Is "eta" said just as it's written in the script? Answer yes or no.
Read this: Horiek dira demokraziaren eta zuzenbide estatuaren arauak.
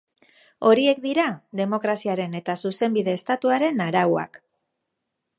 yes